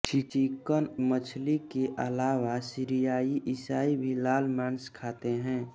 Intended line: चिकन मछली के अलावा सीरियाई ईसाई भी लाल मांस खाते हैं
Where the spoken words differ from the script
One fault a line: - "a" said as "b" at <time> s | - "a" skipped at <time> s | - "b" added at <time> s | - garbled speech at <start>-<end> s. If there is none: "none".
none